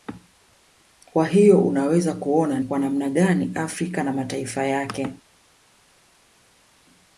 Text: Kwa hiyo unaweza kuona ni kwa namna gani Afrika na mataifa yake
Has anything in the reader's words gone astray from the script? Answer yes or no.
yes